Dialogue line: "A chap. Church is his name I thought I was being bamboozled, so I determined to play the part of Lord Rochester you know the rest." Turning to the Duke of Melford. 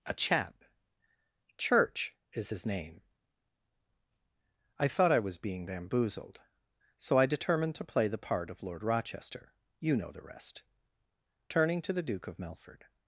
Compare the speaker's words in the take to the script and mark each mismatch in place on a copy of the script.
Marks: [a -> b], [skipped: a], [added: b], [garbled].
"A chap. Church is his name I thought I was being bamboozled, so I determined to play the part of Lord Rochester you know the rest." Turning to the Duke of Melford.